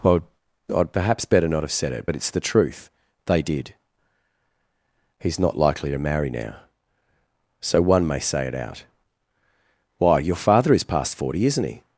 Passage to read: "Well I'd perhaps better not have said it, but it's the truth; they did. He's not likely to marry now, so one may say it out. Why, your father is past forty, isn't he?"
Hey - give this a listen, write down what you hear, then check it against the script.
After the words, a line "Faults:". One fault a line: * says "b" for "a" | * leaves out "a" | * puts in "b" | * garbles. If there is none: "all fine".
"Well I'd perhaps better not have said it, but it's the truth; they did. He's not likely to marry now, so one may say it out. Why, your father is past forty, isn't he?"
Faults:
all fine